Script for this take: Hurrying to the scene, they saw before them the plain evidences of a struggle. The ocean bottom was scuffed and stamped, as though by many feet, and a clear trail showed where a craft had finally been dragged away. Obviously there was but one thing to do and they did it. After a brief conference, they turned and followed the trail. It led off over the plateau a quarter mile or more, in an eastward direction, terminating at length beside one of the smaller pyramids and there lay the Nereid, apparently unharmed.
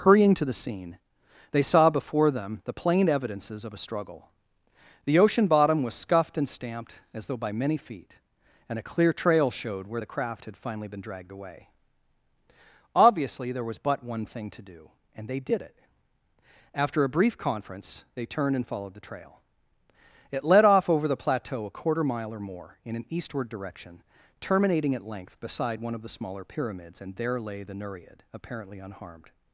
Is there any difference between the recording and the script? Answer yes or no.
yes